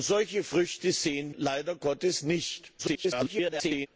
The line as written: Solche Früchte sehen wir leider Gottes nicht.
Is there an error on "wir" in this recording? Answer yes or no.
yes